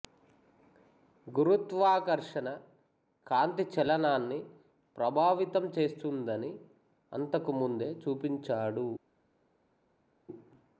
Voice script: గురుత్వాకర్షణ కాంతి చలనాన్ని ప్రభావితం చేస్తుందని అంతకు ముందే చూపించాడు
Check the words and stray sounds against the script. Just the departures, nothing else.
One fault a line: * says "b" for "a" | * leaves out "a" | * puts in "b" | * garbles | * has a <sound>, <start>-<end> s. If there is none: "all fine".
all fine